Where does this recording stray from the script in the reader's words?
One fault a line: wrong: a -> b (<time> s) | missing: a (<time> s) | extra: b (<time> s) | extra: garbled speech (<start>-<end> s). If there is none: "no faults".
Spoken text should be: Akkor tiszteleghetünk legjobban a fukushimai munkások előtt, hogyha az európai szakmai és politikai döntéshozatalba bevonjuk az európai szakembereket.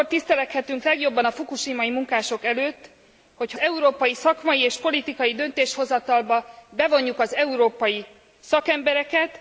missing: az (3.6 s)